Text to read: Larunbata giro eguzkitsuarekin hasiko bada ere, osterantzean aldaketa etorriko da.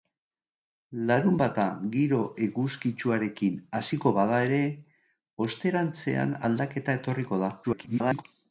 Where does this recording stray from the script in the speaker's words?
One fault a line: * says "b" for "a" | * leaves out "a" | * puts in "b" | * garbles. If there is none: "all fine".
* garbles